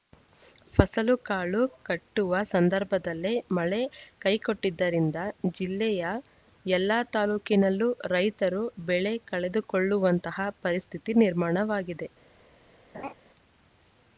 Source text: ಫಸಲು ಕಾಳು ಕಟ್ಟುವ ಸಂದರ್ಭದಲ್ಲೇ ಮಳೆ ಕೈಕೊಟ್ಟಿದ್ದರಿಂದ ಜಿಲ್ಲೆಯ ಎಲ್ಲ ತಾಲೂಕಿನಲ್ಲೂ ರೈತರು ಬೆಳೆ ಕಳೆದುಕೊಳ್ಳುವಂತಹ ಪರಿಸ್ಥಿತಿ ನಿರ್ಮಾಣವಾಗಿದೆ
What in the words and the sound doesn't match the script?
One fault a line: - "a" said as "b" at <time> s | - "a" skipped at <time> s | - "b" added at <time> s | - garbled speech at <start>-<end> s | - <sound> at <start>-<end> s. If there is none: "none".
- laugh at 12.9-13.1 s